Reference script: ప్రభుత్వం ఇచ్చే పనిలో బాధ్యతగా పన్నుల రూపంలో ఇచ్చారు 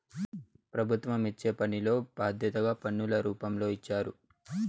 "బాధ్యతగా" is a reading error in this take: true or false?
false